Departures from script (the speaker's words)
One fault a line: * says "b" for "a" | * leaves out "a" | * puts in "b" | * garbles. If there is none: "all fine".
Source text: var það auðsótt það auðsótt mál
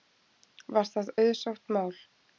* leaves out "það auðsótt"